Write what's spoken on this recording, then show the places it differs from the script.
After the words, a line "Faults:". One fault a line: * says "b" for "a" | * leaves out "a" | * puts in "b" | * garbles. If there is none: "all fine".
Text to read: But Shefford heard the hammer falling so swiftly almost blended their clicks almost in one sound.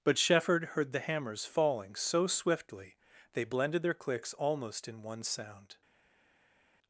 But Shefford heard the hammers falling so swiftly they blended their clicks almost in one sound.
Faults:
* says "hammers" for "hammer"
* says "they" for "almost"